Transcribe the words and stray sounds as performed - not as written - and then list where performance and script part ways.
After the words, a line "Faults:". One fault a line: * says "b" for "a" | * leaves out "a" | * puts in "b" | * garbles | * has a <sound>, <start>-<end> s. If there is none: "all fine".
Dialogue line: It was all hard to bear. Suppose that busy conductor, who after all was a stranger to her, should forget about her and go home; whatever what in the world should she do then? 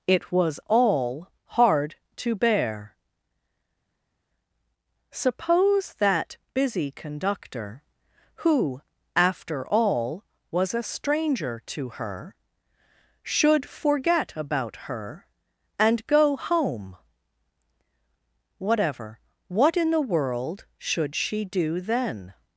It was all hard to bear. Suppose that busy conductor, who after all was a stranger to her, should forget about her and go home; whatever what in the world should she do then?
Faults:
all fine